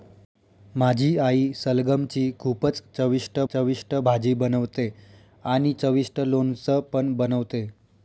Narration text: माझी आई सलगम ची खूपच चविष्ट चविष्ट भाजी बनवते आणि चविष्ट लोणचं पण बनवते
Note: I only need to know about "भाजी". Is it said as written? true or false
true